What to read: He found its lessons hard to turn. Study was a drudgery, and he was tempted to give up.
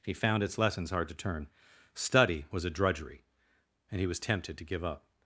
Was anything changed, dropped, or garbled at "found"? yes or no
no